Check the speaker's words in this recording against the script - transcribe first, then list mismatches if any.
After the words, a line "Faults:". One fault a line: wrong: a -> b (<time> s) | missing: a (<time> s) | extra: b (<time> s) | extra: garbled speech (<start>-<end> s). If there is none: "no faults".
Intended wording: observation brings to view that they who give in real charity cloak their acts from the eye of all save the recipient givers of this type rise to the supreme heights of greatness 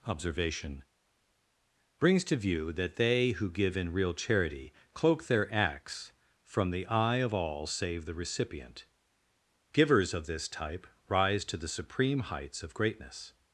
observation brings to view that they who give in real charity cloak their acts from the eye of all save the recipient givers of this type rise to the supreme heights of greatness
Faults:
no faults